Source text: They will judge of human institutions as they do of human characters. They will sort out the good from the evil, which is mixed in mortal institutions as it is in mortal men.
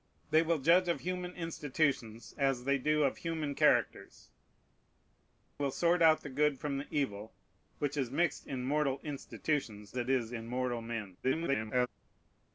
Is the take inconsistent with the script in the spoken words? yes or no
yes